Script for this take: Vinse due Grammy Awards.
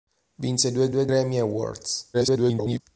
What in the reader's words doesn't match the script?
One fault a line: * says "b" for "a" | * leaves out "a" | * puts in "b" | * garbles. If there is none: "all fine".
* puts in "due"
* garbles